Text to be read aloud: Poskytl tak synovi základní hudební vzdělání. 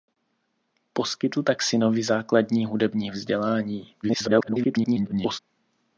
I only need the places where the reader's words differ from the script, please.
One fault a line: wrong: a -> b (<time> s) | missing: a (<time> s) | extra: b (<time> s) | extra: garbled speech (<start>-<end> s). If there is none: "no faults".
extra: garbled speech (4.0-5.4 s)